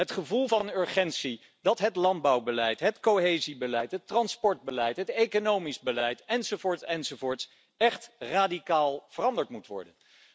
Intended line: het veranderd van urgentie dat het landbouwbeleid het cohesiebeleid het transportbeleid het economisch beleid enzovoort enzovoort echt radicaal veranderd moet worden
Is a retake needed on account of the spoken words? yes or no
yes